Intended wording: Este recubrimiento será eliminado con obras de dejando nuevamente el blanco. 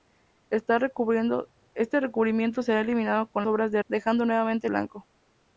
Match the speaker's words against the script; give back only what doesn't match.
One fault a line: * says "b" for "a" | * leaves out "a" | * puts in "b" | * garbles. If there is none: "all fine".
all fine